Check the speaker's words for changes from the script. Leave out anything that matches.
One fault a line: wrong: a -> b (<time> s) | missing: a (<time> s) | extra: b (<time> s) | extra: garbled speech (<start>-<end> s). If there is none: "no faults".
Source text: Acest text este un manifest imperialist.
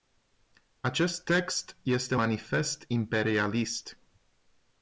missing: un (2.1 s)